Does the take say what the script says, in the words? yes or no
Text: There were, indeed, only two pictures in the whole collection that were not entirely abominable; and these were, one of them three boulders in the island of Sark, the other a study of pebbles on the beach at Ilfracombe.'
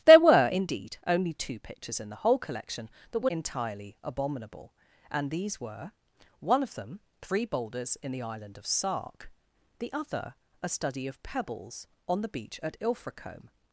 no